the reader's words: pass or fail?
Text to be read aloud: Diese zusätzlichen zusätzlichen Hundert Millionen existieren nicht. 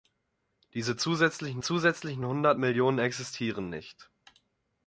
pass